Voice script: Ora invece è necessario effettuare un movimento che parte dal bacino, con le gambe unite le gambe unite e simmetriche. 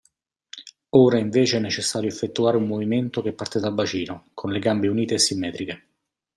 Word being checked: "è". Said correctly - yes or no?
yes